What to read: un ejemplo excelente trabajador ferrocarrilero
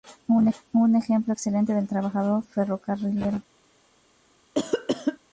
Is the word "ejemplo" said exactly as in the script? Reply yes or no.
yes